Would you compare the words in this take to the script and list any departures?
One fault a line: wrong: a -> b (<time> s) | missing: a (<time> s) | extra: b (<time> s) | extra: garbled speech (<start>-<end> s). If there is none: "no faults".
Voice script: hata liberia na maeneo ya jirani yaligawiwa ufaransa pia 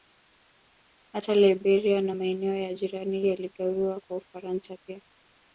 extra: kwa (4.0 s)